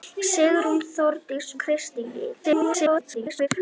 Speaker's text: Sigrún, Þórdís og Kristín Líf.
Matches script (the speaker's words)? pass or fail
fail